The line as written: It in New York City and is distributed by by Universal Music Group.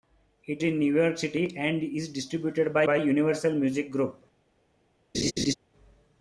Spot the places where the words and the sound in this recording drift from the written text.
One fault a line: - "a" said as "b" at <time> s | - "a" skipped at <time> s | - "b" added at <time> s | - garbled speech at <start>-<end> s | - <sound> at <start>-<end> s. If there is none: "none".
- laugh at 5.1-5.5 s